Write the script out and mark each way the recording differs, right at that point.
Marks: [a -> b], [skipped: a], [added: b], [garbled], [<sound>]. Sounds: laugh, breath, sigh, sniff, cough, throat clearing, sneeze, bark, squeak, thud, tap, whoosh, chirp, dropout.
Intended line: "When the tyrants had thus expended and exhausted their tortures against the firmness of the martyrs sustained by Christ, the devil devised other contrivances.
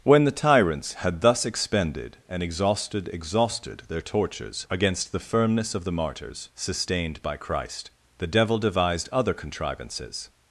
"When the tyrants had thus expended and exhausted [added: exhausted] their tortures against the firmness of the martyrs sustained by Christ, the devil devised other contrivances.